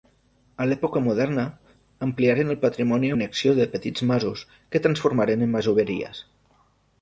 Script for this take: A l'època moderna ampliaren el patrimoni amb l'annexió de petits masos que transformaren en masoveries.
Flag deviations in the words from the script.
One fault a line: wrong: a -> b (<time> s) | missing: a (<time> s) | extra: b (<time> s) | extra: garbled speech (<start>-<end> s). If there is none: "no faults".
missing: amb (3.1 s)